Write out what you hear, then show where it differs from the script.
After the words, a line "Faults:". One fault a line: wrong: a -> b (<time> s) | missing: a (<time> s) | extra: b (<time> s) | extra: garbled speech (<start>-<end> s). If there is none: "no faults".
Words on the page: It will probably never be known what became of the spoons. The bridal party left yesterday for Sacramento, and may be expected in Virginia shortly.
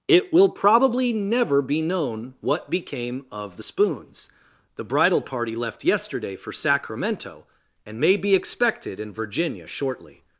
It will probably never be known what became of the spoons. The bridal party left yesterday for Sacramento, and may be expected in Virginia shortly.
Faults:
no faults